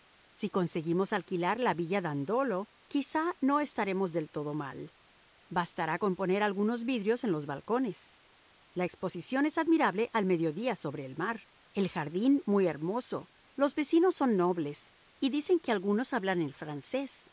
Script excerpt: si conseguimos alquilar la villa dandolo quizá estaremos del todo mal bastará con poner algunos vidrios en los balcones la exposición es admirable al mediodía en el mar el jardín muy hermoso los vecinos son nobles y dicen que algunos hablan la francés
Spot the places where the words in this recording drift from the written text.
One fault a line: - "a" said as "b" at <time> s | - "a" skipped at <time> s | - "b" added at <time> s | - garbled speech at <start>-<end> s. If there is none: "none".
- "no" added at 3.4 s
- "en" said as "sobre" at 10.8 s
- "la" said as "el" at 16.4 s